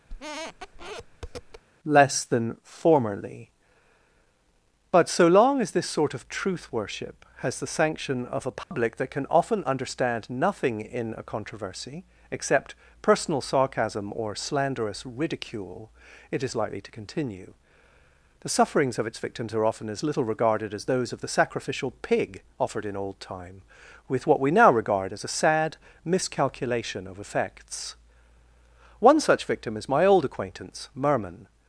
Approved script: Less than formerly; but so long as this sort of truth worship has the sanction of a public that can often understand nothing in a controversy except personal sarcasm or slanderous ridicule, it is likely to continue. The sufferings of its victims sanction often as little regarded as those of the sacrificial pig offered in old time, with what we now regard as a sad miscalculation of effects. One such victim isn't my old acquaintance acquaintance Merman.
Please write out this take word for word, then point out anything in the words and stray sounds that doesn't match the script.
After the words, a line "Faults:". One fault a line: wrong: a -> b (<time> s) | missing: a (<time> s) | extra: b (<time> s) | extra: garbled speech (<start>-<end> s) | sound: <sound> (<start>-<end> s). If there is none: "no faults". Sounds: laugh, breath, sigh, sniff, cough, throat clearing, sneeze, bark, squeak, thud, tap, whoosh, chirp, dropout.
Less than formerly; but so long as this sort of truth worship has the sanction of a public that can often understand nothing in a controversy except personal sarcasm or slanderous ridicule, it is likely to continue. The sufferings of its victims are often as little regarded as those of the sacrificial pig offered in old time, with what we now regard as a sad miscalculation of effects. One such victim is my old acquaintance Merman.
Faults:
sound: squeak (0.1-1.6 s)
sound: dropout (8.6-8.7 s)
wrong: sanction -> are (19.5 s)
wrong: isn't -> is (29.8 s)
missing: acquaintance (30.9 s)